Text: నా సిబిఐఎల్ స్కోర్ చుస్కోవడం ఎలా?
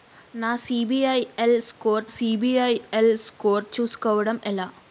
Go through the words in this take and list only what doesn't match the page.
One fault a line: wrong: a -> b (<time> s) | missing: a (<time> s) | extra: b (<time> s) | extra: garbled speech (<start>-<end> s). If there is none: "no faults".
extra: సిబిఐఎల్ స్కోర్ (2.1 s)